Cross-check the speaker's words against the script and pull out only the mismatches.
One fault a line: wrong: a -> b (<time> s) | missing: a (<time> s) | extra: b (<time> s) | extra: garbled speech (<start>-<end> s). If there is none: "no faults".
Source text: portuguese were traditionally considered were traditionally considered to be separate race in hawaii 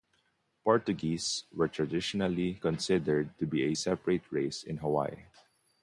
missing: were traditionally considered (3.4 s)
extra: a (3.6 s)